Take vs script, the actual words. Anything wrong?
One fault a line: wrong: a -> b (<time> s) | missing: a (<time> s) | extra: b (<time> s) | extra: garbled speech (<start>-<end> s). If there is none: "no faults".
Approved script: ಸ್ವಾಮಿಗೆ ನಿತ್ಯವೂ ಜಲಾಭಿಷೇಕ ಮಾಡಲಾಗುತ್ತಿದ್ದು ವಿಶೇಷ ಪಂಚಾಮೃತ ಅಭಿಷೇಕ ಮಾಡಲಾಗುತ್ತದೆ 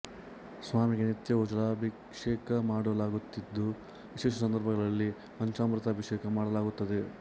extra: ಸಂದರ್ಭಗಳಲ್ಲಿ (4.4 s)